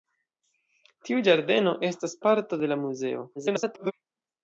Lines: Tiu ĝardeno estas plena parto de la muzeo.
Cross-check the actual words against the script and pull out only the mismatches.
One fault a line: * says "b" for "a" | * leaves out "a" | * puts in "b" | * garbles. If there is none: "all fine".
* leaves out "plena"
* garbles